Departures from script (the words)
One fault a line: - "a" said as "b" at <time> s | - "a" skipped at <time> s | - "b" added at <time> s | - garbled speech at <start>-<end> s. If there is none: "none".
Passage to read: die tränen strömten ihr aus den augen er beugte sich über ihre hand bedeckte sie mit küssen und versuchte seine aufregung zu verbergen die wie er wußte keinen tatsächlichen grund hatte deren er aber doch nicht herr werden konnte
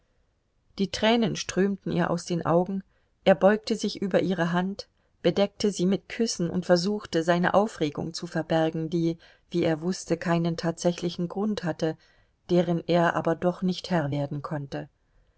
none